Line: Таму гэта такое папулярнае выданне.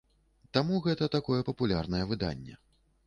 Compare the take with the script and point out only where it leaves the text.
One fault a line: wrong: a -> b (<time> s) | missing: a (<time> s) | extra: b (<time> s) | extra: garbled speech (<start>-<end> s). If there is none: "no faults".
no faults